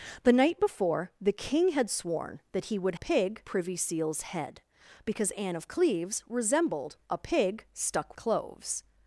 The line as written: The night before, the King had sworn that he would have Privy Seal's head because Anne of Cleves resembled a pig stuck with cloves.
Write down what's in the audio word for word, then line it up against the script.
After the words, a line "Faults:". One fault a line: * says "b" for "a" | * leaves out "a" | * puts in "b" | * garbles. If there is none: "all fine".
The night before, the King had sworn that he would pig Privy Seal's head because Anne of Cleves resembled a pig stuck cloves.
Faults:
* says "pig" for "have"
* leaves out "with"